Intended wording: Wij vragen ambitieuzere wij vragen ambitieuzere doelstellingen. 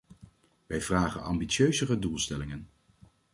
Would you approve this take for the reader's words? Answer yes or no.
no